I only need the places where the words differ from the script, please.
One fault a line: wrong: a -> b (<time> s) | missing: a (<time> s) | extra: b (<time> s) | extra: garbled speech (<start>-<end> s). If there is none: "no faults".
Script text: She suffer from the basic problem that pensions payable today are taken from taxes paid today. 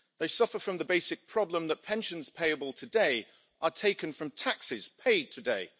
wrong: She -> They (0.2 s)